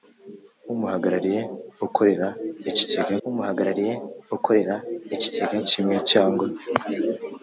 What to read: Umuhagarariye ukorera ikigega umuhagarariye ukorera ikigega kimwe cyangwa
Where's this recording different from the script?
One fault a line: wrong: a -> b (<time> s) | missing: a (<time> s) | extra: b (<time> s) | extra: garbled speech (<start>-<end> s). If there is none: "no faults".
no faults